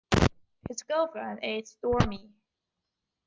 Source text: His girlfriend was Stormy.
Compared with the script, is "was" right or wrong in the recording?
wrong